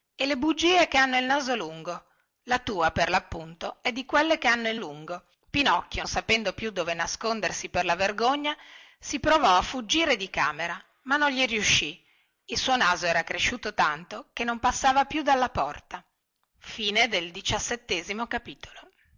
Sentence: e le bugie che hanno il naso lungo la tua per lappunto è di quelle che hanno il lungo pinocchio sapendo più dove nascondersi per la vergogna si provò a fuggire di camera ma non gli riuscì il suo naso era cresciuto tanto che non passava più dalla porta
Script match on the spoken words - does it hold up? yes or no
yes